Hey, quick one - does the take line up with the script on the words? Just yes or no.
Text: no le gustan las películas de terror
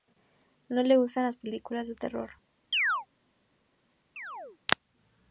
yes